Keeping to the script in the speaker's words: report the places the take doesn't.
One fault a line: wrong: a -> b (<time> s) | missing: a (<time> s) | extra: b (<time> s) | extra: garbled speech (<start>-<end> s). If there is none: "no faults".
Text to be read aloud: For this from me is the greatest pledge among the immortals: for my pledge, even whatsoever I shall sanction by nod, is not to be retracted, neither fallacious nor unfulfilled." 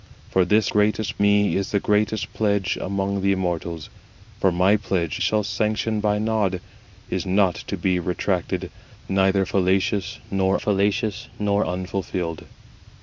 wrong: from -> greatest (0.7 s)
missing: even whatsoever I (5.2 s)
extra: fallacious nor (10.6 s)